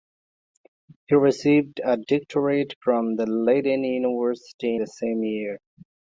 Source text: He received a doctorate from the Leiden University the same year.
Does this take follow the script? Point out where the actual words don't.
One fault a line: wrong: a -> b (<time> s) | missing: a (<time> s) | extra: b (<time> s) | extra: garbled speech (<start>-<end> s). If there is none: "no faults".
no faults